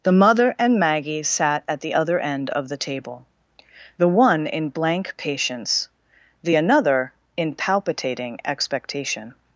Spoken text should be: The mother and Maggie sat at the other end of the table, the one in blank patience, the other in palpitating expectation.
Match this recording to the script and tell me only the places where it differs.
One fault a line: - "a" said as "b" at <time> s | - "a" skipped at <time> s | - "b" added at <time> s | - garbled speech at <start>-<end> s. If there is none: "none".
- "other" said as "another" at 6.5 s